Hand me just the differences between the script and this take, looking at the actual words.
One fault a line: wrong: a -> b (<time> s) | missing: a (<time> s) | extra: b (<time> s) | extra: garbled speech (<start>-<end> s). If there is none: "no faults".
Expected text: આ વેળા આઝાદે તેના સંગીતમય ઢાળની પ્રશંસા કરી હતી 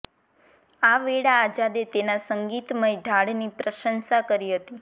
no faults